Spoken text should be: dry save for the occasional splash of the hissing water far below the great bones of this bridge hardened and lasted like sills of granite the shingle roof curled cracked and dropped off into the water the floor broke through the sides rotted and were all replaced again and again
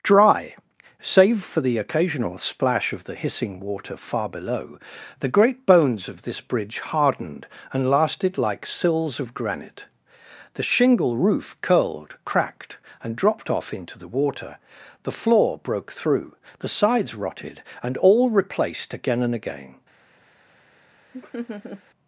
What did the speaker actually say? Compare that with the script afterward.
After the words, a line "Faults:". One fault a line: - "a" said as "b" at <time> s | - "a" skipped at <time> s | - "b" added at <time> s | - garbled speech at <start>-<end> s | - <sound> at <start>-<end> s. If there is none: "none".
dry save for the occasional splash of the hissing water far below the great bones of this bridge hardened and lasted like sills of granite the shingle roof curled cracked and dropped off into the water the floor broke through the sides rotted and all replaced again and again
Faults:
- "were" skipped at 18.0 s
- laugh at 21.1-21.8 s